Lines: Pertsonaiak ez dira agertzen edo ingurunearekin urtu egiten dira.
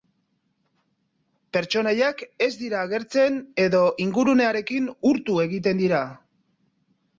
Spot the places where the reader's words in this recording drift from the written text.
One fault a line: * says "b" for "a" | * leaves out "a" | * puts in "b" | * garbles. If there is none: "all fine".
all fine